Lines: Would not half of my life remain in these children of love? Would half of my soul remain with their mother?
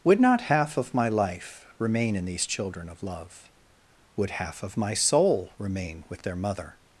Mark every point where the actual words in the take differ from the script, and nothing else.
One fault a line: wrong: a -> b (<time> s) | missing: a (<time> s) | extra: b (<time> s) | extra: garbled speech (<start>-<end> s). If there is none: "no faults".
no faults